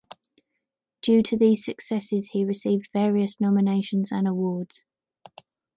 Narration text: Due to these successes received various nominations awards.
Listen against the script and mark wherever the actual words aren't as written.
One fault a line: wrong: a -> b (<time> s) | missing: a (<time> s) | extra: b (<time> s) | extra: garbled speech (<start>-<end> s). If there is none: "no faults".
extra: he (2.3 s)
extra: and (4.1 s)